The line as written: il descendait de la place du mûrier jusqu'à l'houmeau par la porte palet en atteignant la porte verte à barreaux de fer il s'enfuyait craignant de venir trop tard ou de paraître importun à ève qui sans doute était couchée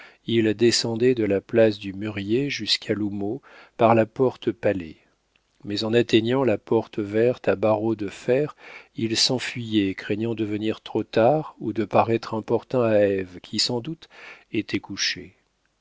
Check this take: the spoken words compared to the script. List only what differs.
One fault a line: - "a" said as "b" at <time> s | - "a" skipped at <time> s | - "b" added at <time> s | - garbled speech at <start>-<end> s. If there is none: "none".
- "mais" added at 5.6 s